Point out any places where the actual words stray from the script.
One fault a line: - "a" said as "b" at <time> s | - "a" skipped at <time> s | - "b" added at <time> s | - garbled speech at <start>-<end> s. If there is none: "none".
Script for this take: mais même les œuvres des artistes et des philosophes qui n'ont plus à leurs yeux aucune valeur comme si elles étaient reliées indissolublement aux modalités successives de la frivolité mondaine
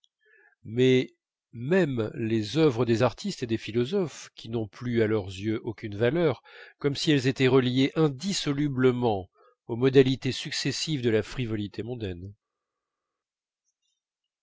none